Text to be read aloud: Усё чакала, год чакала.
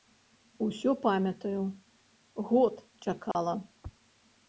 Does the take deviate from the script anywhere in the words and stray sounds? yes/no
yes